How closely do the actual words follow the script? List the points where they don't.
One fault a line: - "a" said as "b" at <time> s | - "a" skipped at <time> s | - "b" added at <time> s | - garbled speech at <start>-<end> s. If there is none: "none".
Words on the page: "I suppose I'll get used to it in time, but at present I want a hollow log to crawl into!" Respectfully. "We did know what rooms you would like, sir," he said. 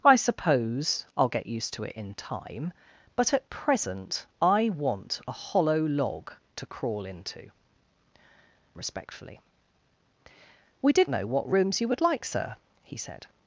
none